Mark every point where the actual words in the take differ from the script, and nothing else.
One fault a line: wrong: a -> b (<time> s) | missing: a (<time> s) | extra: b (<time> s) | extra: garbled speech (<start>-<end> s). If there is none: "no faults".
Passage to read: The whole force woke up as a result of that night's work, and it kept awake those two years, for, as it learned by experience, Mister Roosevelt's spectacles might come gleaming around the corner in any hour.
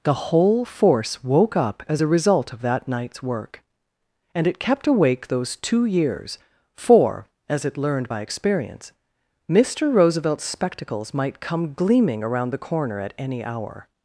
wrong: in -> at (13.0 s)